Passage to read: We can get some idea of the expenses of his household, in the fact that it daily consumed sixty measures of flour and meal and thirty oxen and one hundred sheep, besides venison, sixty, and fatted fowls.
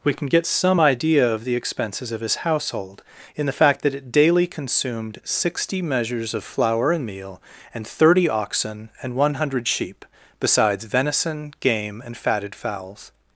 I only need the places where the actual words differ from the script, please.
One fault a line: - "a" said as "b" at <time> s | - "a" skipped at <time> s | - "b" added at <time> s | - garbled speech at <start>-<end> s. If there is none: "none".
- "sixty" said as "game" at 11.6 s